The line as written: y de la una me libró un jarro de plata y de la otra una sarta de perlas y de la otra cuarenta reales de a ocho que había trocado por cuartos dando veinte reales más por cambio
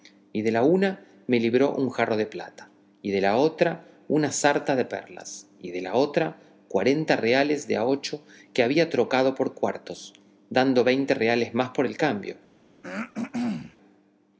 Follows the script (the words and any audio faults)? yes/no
no